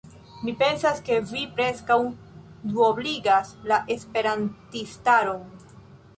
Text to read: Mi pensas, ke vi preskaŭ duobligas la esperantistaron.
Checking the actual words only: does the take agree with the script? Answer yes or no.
yes